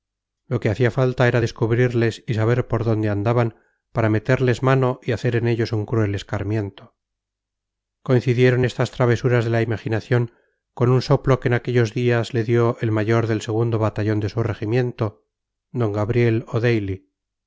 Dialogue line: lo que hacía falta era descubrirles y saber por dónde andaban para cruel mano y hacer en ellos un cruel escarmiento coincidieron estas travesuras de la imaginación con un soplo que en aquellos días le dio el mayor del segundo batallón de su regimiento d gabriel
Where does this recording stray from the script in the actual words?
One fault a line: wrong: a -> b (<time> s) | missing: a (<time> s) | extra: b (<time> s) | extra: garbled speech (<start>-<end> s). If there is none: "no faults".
wrong: cruel -> meterles (4.1 s)